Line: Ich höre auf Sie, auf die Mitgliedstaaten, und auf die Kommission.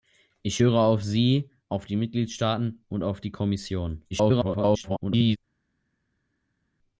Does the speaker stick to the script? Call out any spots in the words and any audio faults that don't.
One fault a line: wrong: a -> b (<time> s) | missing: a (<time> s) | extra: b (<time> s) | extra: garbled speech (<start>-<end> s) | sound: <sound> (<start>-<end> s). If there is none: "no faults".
extra: garbled speech (4.1-5.4 s)